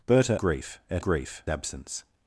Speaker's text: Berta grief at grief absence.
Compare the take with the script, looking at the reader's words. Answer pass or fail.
pass